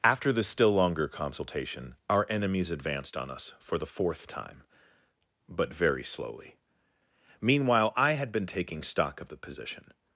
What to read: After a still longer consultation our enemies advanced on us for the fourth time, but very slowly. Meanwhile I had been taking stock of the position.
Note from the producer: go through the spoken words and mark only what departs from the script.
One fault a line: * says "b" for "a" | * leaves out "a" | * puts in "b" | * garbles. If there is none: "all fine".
* says "the" for "a"